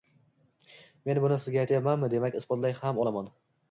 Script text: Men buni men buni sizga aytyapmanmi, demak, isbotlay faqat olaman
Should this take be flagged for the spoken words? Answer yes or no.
yes